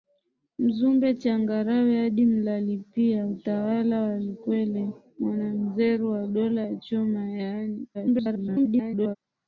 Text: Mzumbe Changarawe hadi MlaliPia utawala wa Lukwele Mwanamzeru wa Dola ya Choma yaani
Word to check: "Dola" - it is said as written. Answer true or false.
true